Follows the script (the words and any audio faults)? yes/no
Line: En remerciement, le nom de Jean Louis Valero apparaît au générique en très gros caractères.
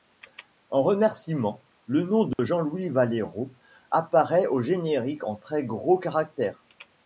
no